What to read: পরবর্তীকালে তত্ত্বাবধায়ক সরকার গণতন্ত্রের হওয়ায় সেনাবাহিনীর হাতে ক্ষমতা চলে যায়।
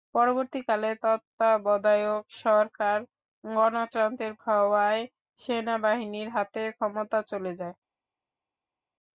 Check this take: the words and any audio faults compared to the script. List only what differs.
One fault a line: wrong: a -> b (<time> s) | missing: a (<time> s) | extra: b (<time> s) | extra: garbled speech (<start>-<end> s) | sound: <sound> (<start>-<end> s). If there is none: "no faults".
no faults